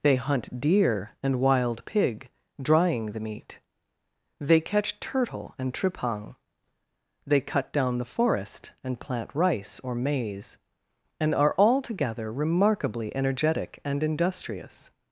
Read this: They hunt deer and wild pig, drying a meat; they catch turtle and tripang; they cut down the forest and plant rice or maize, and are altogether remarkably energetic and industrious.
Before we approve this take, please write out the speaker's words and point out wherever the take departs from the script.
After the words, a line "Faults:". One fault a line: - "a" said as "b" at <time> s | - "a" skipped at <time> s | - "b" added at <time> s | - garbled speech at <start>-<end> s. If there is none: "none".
They hunt deer and wild pig, drying the meat; they catch turtle and tripang; they cut down the forest and plant rice or maize, and are altogether remarkably energetic and industrious.
Faults:
- "a" said as "the" at 3.1 s